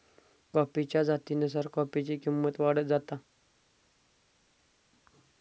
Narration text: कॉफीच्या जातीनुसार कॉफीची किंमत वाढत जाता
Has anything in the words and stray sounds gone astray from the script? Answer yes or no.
no